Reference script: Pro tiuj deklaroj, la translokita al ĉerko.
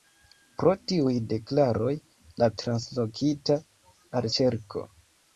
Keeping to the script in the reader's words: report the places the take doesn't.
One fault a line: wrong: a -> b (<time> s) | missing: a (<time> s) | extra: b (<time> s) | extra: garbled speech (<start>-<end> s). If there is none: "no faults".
no faults